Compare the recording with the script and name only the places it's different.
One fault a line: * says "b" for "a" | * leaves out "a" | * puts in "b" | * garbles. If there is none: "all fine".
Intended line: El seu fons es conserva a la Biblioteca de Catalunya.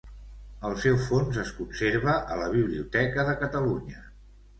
all fine